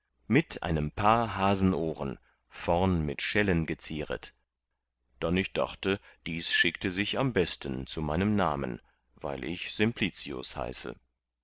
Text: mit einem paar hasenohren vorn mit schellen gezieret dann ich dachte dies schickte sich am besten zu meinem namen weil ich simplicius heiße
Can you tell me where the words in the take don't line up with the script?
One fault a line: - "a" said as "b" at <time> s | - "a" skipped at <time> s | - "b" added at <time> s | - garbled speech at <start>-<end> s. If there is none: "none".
none